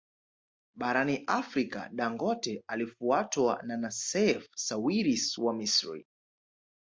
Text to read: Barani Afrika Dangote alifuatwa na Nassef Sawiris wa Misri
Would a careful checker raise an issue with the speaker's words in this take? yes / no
no